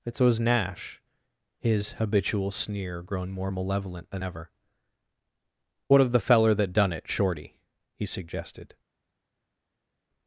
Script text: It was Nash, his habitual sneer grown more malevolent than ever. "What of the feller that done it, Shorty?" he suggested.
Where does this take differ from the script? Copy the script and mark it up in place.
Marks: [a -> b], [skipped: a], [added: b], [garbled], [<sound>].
It was Nash, his habitual sneer grown more malevolent than ever. "What of the feller that done it, Shorty?" he suggested.